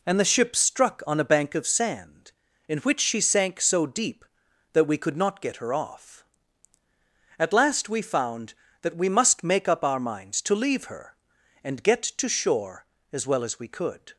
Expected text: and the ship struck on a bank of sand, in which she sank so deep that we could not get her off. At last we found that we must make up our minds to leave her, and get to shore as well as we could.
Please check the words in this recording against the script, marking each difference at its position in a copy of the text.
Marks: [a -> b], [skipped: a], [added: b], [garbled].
and the ship struck on a bank of sand, in which she sank so deep that we could not get her off. At last we found that we must make up our minds to leave her, and get to shore as well as we could.